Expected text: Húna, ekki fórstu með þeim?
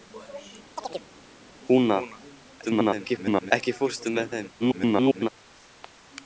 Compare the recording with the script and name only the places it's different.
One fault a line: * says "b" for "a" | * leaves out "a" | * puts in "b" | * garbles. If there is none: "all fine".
* garbles
* garbles